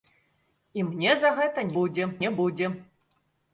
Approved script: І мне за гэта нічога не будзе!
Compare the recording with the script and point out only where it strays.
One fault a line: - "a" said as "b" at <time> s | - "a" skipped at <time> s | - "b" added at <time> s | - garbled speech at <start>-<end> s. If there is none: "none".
- "нічога" said as "будзе" at 1.8 s